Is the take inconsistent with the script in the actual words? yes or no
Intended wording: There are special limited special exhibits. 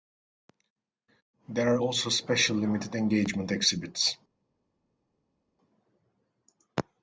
yes